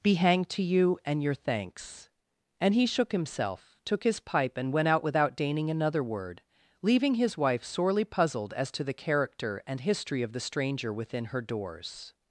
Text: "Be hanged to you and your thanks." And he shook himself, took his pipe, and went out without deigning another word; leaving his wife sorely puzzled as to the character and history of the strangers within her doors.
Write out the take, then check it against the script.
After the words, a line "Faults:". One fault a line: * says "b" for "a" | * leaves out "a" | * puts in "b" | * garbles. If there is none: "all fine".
"Be hanged to you and your thanks." And he shook himself, took his pipe, and went out without deigning another word; leaving his wife sorely puzzled as to the character and history of the stranger within her doors.
Faults:
* says "stranger" for "strangers"